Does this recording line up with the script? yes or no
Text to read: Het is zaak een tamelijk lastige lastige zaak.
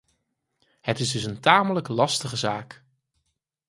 no